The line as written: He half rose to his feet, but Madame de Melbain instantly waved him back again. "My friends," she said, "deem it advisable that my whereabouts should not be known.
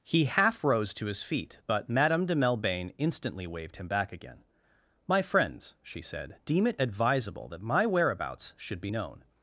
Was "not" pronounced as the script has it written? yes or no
no